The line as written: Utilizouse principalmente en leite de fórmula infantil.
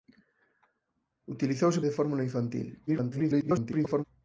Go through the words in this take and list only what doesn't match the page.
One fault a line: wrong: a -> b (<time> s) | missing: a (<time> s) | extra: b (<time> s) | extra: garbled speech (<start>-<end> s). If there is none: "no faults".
missing: principalmente en leite (1.8 s)
extra: garbled speech (2.9-4.0 s)